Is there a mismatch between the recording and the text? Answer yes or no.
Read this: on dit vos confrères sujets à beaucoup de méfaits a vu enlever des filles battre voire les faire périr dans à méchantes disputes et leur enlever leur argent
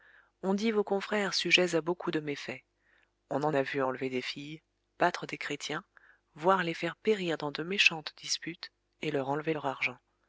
yes